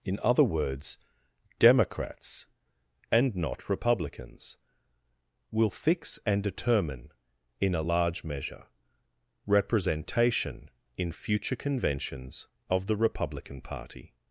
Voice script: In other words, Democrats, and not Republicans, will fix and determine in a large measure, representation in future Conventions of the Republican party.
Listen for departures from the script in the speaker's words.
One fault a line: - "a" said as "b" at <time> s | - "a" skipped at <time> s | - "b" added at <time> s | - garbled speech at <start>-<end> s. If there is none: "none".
none